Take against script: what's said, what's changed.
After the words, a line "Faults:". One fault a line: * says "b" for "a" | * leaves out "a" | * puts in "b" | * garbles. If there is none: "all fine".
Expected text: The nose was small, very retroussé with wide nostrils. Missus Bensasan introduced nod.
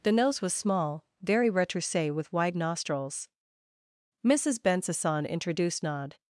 The nose was small, very retroussé with wide nostrils. Missus Bensasan introduced nod.
Faults:
all fine